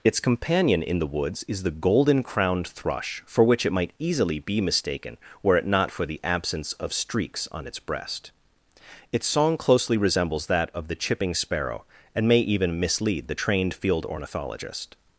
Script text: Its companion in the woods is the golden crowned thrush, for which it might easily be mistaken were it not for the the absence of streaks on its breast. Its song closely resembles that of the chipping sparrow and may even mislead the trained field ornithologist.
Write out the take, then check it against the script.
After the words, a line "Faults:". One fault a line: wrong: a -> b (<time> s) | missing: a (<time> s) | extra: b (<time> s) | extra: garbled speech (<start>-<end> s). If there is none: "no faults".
Its companion in the woods is the golden crowned thrush, for which it might easily be mistaken were it not for the absence of streaks on its breast. Its song closely resembles that of the chipping sparrow and may even mislead the trained field ornithologist.
Faults:
missing: the (6.2 s)